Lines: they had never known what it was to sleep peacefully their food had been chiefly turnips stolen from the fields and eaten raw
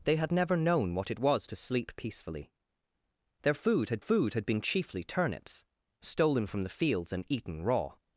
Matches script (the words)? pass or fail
fail